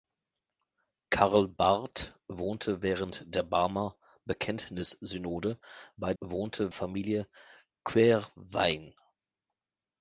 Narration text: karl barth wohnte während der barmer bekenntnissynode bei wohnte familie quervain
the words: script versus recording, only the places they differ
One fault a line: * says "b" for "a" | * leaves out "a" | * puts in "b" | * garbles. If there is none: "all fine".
all fine